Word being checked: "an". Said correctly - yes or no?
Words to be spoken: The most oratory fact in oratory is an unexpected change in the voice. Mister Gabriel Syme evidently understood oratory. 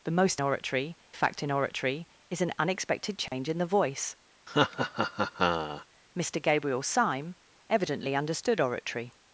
yes